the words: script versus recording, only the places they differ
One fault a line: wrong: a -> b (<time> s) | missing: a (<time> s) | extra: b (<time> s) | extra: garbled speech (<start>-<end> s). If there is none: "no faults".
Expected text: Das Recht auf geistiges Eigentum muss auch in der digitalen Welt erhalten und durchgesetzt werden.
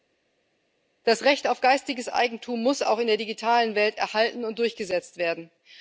no faults